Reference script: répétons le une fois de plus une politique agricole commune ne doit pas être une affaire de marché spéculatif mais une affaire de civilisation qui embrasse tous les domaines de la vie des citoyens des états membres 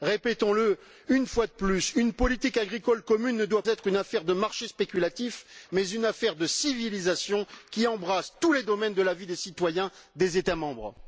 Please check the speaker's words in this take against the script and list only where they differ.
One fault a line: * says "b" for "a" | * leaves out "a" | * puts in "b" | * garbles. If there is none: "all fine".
* leaves out "pas"